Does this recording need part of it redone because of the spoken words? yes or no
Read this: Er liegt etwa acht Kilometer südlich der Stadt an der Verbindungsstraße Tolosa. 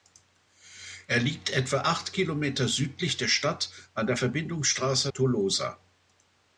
no